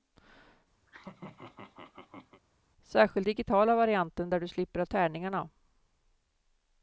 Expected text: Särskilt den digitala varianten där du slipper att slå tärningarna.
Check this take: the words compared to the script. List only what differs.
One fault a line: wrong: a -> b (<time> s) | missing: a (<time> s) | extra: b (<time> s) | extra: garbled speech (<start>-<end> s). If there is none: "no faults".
missing: den (3.3 s)
missing: slå (4.9 s)